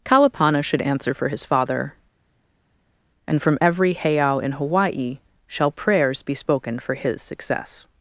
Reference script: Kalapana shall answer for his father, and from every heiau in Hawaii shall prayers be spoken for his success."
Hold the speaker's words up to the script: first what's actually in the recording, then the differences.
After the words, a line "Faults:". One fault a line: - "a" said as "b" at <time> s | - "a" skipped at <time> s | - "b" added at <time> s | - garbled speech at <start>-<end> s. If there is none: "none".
Kalapana should answer for his father, and from every heiau in Hawaii shall prayers be spoken for his success."
Faults:
- "shall" said as "should" at 0.6 s